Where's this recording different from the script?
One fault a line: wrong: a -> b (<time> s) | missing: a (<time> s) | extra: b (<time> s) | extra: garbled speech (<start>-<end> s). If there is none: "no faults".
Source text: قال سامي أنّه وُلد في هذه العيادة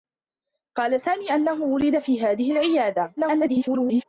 extra: garbled speech (3.2-4.0 s)